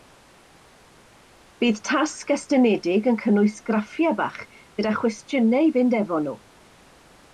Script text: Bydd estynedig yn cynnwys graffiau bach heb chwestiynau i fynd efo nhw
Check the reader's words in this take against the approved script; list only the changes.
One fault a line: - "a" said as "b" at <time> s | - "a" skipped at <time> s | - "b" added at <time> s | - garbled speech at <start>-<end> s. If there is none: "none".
- "tasg" added at 1.9 s
- "heb" said as "gyda" at 4.5 s